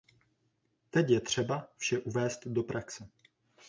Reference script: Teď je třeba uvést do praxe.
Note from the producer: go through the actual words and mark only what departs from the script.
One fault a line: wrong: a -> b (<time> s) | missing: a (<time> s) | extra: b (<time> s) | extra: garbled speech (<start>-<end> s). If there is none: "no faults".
extra: vše (1.8 s)